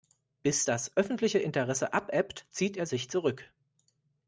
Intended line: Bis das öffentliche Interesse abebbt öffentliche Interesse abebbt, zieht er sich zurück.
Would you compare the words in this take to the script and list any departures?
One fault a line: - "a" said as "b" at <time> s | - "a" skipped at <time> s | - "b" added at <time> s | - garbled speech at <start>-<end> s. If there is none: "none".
- "öffentliche Interesse abebbt" skipped at 2.4 s